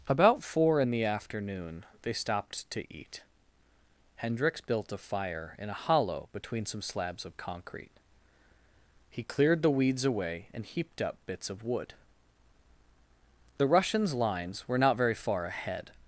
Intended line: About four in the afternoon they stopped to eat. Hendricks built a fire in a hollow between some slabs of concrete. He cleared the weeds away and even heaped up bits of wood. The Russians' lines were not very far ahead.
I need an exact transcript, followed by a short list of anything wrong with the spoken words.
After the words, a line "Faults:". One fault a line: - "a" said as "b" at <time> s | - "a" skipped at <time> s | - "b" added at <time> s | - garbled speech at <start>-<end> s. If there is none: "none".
About four in the afternoon they stopped to eat. Hendricks built a fire in a hollow between some slabs of concrete. He cleared the weeds away and heaped up bits of wood. The Russians' lines were not very far ahead.
Faults:
- "even" skipped at 10.6 s